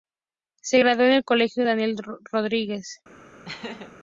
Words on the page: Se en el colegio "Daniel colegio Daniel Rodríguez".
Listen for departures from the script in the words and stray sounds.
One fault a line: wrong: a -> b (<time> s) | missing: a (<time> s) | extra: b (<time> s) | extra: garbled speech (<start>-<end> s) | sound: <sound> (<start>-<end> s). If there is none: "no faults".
extra: graduó (0.8 s)
missing: colegio Daniel (1.9 s)
sound: laugh (3.5-3.9 s)